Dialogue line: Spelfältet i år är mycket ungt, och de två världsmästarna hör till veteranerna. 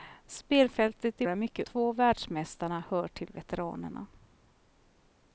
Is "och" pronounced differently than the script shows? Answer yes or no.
yes